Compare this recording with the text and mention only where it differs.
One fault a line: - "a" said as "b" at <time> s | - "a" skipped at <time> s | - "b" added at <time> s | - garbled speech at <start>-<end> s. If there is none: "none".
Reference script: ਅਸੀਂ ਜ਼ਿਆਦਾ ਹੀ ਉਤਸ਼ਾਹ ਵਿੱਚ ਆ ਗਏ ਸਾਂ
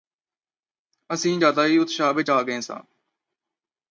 none